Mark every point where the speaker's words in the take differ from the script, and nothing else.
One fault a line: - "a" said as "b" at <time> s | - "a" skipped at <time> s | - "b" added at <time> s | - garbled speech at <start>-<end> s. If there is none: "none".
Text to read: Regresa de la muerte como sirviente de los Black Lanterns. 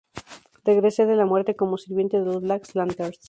none